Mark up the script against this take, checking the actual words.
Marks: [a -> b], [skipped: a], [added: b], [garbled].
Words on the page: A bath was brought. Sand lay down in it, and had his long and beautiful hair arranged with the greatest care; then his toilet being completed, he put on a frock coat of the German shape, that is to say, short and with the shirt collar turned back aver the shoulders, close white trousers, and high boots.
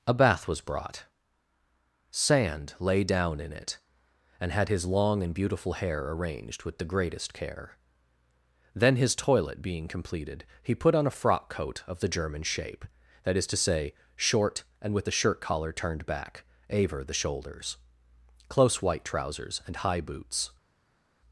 A bath was brought. Sand lay down in it, and had his long and beautiful hair arranged with the greatest care; then his toilet being completed, he put on a frock coat of the German shape, that is to say, short and with the shirt collar turned back aver the shoulders, close white trousers, and high boots.